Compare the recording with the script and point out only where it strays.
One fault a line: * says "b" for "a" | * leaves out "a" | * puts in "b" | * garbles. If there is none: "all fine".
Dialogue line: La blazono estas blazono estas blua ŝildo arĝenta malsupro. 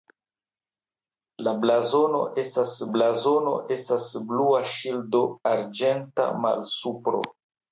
all fine